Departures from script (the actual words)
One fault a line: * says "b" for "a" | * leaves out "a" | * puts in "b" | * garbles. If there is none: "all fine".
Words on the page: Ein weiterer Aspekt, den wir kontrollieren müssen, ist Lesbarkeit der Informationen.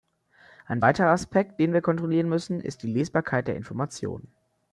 * puts in "die"